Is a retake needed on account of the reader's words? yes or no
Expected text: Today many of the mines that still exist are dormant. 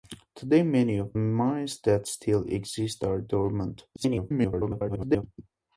yes